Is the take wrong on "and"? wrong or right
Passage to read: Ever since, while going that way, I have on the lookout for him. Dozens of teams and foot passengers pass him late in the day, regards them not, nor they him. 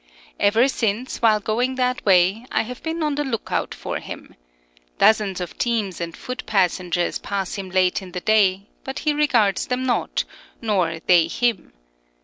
right